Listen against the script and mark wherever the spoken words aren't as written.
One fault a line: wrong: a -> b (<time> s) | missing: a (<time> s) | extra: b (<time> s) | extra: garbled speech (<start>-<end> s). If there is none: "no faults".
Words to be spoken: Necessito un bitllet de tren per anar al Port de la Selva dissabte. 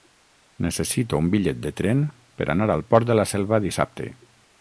no faults